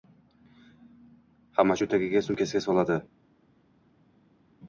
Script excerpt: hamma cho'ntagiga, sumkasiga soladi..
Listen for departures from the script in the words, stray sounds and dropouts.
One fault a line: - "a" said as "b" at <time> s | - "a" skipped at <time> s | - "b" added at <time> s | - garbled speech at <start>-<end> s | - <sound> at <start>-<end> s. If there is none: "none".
none